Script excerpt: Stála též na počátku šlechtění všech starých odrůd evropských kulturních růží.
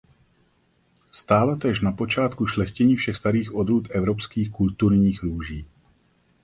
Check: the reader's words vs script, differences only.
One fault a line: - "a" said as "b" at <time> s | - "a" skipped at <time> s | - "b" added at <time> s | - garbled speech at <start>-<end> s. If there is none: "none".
none